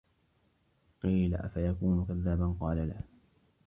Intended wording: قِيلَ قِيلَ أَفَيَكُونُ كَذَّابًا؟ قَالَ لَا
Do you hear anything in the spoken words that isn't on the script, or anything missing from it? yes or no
yes